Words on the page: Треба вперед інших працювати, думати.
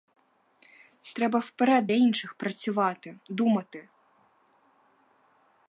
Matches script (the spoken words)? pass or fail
pass